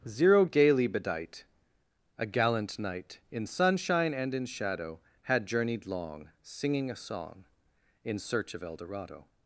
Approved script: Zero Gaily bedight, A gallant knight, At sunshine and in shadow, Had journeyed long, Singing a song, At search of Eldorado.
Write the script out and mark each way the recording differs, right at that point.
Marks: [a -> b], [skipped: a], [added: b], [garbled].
Zero Gaily bedight, A gallant knight, [At -> In] sunshine and in shadow, Had journeyed long, Singing a song, [At -> In] search of Eldorado.